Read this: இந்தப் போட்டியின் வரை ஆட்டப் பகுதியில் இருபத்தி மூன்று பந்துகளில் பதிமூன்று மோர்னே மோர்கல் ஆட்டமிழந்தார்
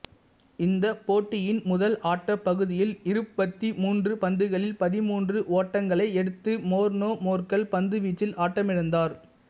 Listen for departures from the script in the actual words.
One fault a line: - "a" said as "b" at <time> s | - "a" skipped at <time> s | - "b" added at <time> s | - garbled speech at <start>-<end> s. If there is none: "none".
- "வரை" said as "முதல்" at 1.6 s
- "ஓட்டங்களை எடுத்து" added at 5.6 s
- "பந்துவீச்சில்" added at 7.7 s